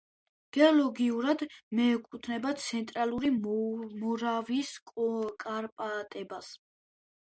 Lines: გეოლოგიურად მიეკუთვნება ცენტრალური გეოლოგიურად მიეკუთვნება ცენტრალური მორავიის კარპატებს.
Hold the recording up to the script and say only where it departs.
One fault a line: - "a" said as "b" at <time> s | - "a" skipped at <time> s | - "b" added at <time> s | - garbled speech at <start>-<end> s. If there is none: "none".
- "გეოლოგიურად მიეკუთვნება ცენტრალური" skipped at 3.3 s